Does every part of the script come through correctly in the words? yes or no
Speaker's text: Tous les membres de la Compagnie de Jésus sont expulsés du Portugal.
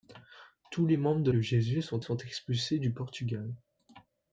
no